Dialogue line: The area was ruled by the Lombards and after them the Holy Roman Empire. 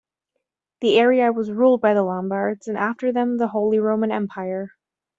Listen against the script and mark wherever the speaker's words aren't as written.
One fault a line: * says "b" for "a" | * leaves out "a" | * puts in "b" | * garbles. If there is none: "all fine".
all fine